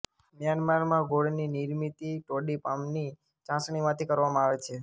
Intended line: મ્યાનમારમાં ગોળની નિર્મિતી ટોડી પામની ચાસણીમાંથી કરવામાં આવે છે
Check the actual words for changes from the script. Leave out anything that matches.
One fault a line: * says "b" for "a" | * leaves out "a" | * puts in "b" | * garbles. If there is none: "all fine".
all fine